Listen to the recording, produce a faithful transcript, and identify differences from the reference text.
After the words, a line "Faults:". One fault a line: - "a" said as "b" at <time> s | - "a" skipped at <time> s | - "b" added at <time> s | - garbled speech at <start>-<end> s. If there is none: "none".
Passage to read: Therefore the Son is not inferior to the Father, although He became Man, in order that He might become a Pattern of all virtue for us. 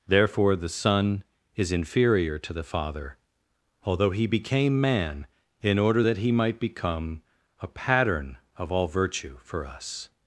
Therefore the Son is inferior to the Father, although He became Man, in order that He might become a Pattern of all virtue for us.
Faults:
- "not" skipped at 1.7 s